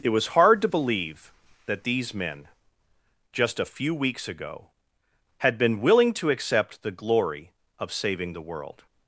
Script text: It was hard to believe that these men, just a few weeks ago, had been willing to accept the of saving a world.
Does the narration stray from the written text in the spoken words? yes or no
yes